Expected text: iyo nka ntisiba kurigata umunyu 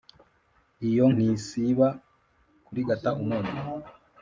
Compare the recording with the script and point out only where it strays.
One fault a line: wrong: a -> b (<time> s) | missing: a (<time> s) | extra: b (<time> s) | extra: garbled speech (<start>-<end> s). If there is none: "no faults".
missing: nka (1.1 s)